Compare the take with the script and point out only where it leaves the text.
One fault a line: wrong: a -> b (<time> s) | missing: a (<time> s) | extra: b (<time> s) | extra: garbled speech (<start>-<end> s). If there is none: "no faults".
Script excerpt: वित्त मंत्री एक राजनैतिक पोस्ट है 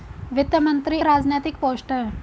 missing: एक (1.0 s)